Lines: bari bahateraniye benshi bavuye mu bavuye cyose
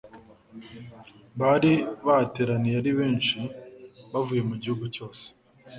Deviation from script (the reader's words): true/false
true